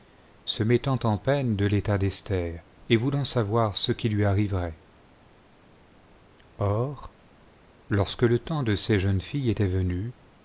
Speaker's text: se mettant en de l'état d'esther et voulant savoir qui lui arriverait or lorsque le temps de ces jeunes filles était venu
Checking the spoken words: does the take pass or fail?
fail